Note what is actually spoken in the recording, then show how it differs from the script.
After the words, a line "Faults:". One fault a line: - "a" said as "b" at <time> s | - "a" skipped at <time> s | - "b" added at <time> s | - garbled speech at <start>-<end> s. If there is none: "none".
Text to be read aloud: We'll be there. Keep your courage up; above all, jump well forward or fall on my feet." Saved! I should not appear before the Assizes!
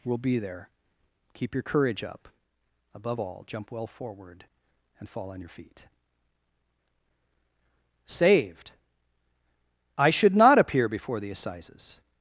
We'll be there. Keep your courage up; above all, jump well forward and fall on your feet." Saved! I should not appear before the Assizes!
Faults:
- "or" said as "and" at 5.0 s
- "my" said as "your" at 5.4 s